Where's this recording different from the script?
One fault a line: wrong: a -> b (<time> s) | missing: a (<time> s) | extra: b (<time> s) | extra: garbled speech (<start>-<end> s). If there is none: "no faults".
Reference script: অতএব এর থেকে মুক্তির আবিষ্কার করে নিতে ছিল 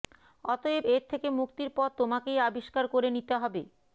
extra: পথ তোমাকেই (1.8 s)
wrong: ছিল -> হবে (3.4 s)